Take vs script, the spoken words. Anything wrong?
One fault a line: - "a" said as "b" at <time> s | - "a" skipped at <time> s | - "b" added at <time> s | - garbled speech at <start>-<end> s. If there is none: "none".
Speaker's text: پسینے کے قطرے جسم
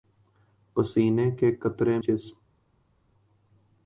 none